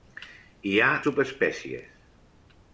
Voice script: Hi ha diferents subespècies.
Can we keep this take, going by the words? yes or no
no